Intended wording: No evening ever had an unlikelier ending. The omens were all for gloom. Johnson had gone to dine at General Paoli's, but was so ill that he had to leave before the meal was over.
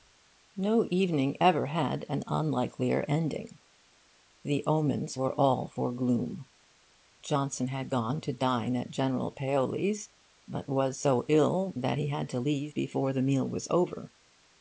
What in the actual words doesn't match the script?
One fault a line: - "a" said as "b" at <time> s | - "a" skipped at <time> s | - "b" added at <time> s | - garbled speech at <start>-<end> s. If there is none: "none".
none